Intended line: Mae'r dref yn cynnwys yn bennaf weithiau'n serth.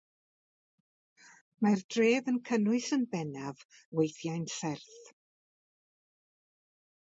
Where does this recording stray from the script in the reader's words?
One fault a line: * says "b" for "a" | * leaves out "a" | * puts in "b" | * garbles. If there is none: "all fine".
all fine